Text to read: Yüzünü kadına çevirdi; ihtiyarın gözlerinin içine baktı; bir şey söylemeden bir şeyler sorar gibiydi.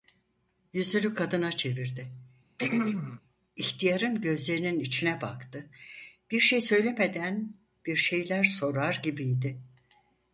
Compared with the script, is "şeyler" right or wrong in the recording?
right